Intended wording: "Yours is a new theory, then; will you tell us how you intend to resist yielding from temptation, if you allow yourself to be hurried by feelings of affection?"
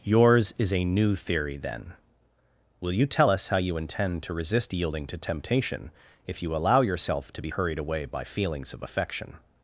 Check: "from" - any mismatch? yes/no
yes